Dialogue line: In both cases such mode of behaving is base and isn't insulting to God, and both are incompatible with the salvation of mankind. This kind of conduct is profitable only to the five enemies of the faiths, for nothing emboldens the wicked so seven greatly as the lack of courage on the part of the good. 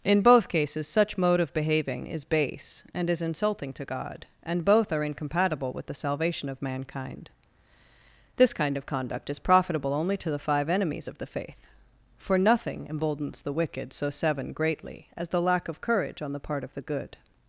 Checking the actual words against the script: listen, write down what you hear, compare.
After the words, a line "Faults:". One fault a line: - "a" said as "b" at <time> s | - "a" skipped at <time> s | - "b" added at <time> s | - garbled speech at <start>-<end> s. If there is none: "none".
In both cases such mode of behaving is base and is insulting to God, and both are incompatible with the salvation of mankind. This kind of conduct is profitable only to the five enemies of the faith, for nothing emboldens the wicked so seven greatly as the lack of courage on the part of the good.
Faults:
- "isn't" said as "is" at 3.1 s
- "faiths" said as "faith" at 11.3 s